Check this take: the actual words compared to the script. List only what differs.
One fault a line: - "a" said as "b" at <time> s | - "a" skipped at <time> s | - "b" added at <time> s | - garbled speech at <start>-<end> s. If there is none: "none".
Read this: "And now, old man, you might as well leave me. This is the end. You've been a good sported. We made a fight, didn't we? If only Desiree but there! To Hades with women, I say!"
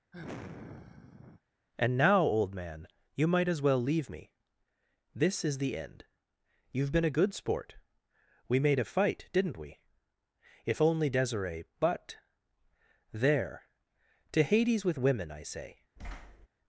- "sported" said as "sport" at 7.3 s